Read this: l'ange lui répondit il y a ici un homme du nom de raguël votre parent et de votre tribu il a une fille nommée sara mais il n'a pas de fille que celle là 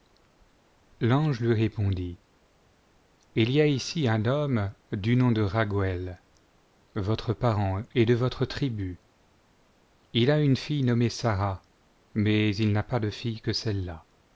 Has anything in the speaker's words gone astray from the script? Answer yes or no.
no